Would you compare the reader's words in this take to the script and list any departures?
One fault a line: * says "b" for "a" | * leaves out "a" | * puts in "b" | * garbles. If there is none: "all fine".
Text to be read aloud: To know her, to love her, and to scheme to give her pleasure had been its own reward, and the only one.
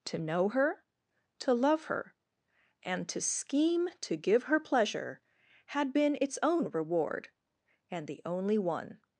all fine